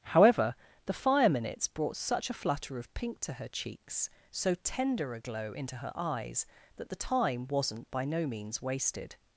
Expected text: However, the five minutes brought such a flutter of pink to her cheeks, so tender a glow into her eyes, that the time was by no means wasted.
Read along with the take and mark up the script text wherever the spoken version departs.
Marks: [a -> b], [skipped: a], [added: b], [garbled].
However, the [five -> fire] minutes brought such a flutter of pink to her cheeks, so tender a glow into her eyes, that the time [was -> wasn't] by no means wasted.